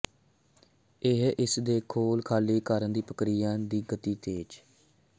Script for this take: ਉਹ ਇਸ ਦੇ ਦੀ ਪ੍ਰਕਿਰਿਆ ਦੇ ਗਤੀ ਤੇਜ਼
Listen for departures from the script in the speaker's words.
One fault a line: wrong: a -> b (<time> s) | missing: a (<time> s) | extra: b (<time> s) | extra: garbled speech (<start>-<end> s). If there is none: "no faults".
wrong: ਉਹ -> ਇਹ (1.0 s)
extra: ਖੋਲ ਖਾਲੀ ਕਰਨ (1.9 s)
wrong: ਦੇ -> ਦੀ (3.6 s)